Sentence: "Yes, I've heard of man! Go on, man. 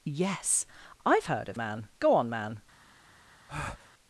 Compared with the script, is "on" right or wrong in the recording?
right